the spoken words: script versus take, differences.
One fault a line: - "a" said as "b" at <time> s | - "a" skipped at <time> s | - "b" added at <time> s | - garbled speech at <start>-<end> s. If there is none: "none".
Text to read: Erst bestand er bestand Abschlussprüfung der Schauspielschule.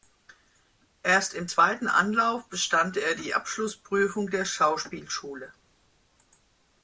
- "im zweiten Anlauf" added at 1.4 s
- "bestand" said as "die" at 3.2 s